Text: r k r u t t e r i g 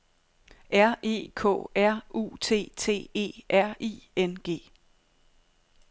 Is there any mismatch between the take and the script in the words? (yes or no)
yes